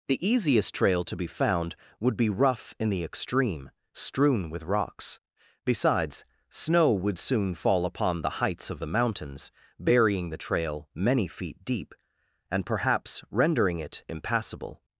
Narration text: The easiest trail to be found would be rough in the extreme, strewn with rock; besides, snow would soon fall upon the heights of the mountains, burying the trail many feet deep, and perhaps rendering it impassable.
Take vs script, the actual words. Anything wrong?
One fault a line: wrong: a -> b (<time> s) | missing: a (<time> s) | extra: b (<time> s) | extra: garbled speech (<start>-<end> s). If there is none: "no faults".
wrong: rock -> rocks (4.6 s)